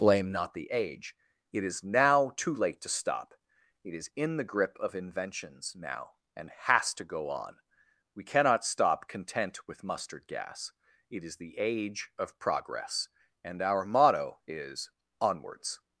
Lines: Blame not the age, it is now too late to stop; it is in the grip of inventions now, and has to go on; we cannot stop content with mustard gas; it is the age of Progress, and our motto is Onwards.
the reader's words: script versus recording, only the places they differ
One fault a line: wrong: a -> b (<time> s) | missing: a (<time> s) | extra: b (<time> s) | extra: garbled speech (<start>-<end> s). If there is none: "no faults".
no faults